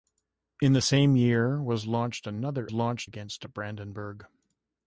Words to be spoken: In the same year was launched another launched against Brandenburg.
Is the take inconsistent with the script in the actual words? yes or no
no